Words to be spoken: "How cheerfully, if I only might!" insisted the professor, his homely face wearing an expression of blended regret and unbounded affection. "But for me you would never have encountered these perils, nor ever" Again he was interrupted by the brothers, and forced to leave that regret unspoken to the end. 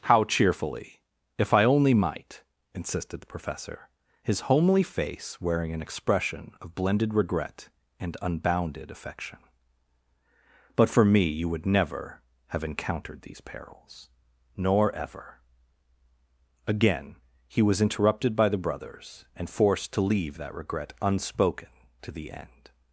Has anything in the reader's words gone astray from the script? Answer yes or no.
no